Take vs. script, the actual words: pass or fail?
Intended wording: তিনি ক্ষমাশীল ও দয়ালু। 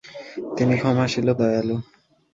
pass